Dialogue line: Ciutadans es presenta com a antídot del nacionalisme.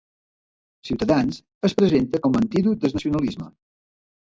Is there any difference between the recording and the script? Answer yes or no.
no